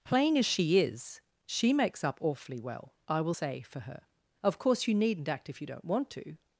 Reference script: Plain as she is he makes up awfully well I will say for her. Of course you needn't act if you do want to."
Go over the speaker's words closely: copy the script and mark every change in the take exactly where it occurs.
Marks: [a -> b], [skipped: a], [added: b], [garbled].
Plain as she is [he -> she] makes up awfully well I will say for her. Of course you needn't act if you [do -> don't] want to."